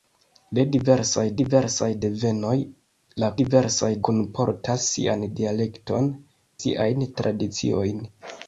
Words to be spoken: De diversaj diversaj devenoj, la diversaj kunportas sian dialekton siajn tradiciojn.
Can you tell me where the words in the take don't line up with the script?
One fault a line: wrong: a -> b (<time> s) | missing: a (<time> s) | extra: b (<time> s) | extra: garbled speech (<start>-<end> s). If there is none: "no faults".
no faults